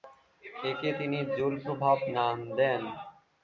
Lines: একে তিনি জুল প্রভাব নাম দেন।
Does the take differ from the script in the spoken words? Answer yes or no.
no